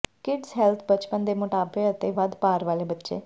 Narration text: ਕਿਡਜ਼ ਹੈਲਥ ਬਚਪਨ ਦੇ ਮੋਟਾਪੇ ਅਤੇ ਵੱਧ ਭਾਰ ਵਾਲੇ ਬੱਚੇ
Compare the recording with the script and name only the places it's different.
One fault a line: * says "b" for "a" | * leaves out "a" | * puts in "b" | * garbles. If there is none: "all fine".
all fine